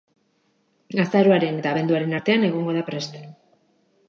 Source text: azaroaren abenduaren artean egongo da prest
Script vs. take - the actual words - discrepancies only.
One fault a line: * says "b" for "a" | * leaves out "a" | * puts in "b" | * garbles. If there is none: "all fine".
* puts in "eta"